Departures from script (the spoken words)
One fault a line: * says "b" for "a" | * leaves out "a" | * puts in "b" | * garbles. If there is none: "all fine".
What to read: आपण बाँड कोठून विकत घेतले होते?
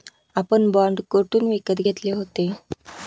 all fine